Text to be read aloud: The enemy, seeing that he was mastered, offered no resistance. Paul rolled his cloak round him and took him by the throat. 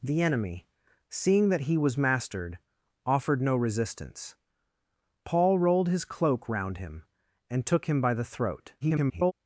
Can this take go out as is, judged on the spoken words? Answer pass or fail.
fail